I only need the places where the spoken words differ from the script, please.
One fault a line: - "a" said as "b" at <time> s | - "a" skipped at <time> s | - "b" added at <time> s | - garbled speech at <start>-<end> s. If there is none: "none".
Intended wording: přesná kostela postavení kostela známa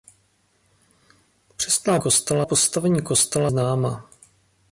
none